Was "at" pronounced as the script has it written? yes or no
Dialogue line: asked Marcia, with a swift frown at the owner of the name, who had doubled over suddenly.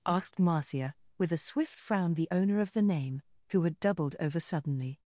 no